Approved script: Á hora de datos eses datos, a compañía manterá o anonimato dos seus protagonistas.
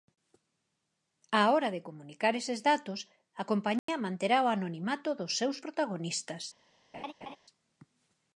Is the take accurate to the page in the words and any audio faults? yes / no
no